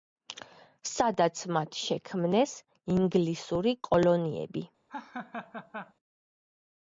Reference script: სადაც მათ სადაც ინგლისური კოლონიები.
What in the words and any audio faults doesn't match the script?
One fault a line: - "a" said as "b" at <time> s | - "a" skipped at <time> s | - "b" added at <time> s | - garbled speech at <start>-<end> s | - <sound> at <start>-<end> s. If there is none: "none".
- "სადაც" said as "შექმნეს" at 1.8 s
- laugh at 4.9-5.9 s